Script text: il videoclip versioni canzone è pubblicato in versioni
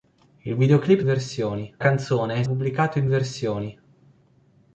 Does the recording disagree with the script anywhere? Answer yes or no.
no